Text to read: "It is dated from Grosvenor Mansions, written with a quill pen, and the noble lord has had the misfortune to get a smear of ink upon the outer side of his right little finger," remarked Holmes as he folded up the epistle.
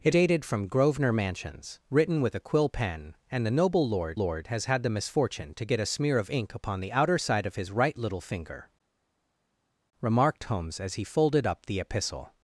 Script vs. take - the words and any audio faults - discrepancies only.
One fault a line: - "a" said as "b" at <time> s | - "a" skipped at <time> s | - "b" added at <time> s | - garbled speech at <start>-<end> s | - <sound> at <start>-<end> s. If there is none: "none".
- "is" skipped at 0.1 s
- "lord" added at 4.2 s